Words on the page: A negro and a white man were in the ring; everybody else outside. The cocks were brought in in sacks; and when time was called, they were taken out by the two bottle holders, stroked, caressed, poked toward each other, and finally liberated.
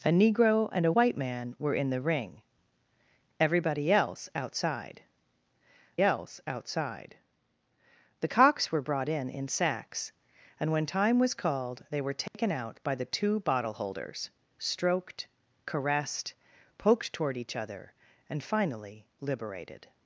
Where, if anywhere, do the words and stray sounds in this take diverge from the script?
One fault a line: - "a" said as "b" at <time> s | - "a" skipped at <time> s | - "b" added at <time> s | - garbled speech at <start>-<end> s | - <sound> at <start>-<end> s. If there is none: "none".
- "else outside" added at 6.0 s
- dropout at 12.3-12.3 s